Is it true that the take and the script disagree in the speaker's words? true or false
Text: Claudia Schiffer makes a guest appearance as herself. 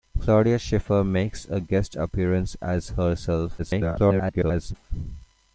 true